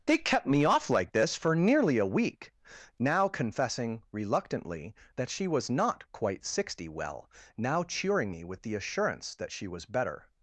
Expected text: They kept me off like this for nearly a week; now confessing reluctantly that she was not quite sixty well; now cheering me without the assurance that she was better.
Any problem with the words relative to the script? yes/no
yes